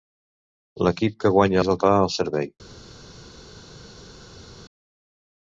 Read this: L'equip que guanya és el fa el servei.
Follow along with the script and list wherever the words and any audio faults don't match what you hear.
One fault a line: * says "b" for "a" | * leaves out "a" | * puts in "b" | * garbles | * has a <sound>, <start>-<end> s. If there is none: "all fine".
all fine